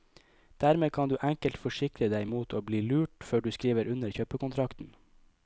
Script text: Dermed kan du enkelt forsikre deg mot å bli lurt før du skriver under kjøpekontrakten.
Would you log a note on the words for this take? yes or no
no